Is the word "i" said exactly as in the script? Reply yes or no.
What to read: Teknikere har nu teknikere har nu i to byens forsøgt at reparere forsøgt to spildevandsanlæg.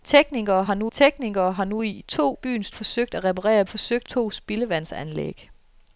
yes